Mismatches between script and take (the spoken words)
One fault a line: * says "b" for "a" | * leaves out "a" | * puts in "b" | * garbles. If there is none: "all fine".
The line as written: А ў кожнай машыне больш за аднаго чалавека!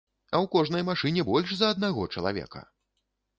all fine